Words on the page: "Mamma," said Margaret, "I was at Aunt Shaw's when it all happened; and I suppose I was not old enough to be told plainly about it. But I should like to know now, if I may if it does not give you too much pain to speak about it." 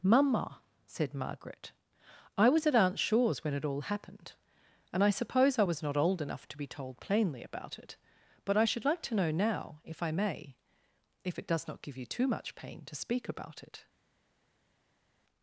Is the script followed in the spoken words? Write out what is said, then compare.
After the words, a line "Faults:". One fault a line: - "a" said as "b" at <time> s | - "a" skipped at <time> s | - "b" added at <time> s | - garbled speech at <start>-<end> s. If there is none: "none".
"Mamma," said Margaret, "I was at Aunt Shaw's when it all happened; and I suppose I was not old enough to be told plainly about it. But I should like to know now, if I may if it does not give you too much pain to speak about it."
Faults:
none